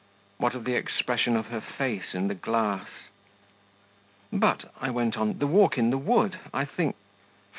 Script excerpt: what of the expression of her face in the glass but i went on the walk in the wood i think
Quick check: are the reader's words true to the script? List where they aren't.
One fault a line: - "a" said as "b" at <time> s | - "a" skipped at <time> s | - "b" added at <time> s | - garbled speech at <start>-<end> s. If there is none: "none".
none